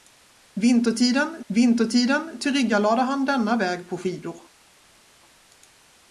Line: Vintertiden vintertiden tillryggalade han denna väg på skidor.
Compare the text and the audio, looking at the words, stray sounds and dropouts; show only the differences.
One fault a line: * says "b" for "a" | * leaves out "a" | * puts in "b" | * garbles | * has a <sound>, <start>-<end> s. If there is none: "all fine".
all fine